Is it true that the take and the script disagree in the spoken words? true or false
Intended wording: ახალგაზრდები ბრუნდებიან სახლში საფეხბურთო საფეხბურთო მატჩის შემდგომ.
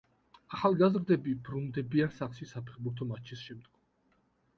true